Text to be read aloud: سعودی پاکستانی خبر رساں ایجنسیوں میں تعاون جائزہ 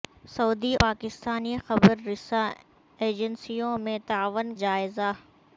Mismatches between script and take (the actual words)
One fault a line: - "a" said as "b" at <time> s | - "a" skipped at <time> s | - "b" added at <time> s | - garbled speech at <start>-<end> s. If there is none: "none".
none